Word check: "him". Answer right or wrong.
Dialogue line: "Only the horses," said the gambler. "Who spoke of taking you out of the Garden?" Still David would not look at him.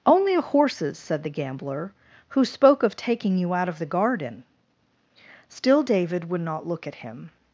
right